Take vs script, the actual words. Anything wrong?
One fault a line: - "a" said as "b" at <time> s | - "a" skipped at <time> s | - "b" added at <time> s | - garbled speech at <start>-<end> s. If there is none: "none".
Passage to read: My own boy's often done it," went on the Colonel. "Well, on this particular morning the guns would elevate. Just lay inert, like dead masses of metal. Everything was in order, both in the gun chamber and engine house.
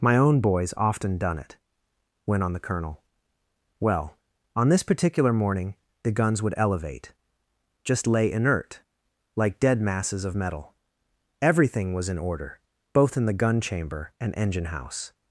none